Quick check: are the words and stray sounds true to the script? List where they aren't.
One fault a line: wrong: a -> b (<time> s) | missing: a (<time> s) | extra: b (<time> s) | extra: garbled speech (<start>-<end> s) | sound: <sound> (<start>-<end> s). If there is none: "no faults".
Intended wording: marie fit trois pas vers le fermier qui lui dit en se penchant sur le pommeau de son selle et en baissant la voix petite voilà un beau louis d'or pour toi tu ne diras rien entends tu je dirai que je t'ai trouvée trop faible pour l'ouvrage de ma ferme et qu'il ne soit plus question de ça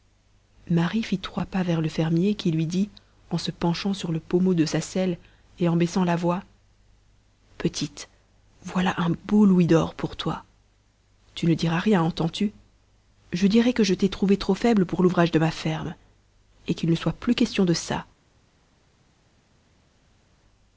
wrong: son -> sa (4.6 s)